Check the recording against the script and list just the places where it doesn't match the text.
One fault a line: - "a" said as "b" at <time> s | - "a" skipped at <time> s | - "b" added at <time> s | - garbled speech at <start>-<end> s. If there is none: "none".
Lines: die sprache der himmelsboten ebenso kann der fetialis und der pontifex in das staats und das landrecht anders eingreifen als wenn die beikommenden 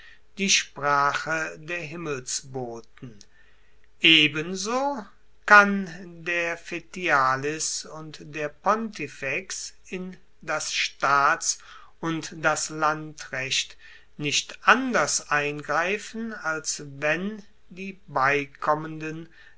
- "nicht" added at 14.2 s